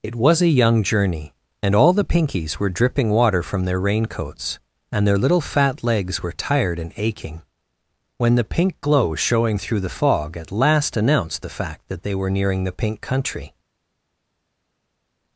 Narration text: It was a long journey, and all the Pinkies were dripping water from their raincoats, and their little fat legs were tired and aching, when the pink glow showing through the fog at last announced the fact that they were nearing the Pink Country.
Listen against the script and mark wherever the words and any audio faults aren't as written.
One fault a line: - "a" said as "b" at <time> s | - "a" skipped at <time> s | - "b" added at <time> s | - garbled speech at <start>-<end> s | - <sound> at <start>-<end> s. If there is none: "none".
- "long" said as "young" at 0.6 s